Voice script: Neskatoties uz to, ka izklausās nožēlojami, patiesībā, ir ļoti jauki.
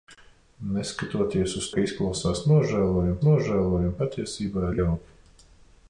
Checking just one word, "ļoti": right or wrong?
wrong